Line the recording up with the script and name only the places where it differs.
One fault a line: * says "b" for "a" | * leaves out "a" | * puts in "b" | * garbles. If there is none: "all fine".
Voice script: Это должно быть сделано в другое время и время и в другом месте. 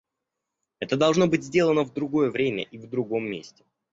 * leaves out "время и"